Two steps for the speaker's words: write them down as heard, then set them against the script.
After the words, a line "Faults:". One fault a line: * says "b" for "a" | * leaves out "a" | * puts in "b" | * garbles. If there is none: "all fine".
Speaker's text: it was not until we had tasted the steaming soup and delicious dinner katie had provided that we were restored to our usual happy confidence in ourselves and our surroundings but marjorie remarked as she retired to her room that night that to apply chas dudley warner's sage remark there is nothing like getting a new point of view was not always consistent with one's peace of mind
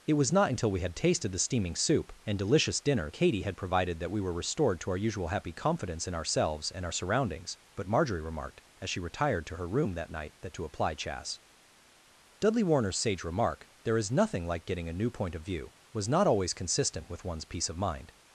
it was not until we had tasted the steaming soup and delicious dinner katie had provided that we were restored to our usual happy confidence in ourselves and our surroundings but marjorie remarked as she retired to her room that night that to apply chas dudley warner's sage remark there is nothing like getting a new point of view was not always consistent with one's peace of mind
Faults:
all fine